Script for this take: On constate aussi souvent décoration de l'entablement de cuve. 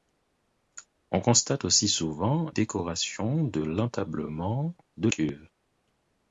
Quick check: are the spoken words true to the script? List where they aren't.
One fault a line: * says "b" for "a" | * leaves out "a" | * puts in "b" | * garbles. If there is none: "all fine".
all fine